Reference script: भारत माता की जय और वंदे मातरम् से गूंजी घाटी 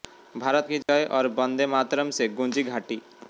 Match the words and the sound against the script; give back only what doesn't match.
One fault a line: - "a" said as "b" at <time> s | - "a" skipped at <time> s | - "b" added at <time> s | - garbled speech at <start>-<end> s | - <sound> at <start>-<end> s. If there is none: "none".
- "माता" skipped at 0.7 s
- dropout at 0.8-0.9 s